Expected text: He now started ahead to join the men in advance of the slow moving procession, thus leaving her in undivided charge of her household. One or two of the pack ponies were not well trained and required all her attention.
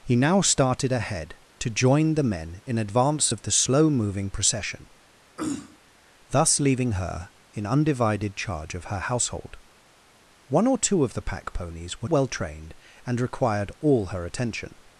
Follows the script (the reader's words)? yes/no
no